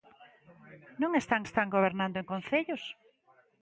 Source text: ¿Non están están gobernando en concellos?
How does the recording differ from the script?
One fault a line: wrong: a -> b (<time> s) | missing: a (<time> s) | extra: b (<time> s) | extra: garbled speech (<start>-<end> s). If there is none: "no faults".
no faults